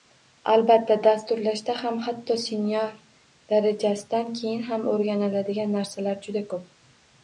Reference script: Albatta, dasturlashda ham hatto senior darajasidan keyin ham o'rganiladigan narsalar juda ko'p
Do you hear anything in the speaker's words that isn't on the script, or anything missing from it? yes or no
no